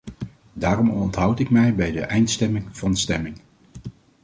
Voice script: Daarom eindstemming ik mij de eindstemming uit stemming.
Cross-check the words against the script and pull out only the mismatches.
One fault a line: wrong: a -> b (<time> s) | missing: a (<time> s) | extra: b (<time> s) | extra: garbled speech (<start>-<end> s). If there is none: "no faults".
wrong: eindstemming -> onthoud (0.9 s)
extra: bij (1.8 s)
wrong: uit -> van (2.7 s)